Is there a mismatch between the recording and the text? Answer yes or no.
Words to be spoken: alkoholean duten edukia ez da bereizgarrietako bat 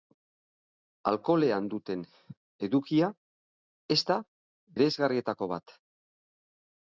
no